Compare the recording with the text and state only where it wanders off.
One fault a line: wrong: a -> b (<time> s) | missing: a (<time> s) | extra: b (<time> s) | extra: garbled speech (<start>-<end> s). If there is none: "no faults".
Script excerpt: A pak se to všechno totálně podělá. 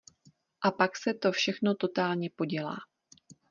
no faults